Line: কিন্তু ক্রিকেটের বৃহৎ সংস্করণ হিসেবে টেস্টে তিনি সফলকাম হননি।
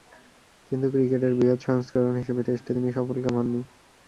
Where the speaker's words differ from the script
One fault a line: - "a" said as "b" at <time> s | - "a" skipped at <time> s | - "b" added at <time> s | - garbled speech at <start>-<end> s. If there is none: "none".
none